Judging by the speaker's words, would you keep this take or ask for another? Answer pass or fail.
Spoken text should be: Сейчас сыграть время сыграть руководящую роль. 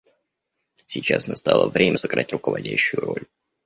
fail